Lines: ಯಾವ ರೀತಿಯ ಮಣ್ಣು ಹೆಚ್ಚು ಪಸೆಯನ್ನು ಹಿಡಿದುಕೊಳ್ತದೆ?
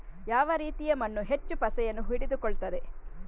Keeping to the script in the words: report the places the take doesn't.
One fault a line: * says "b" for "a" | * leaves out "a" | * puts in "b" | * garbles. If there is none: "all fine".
all fine